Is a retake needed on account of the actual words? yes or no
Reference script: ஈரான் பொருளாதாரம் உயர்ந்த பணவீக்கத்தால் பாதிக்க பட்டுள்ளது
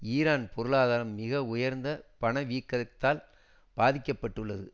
yes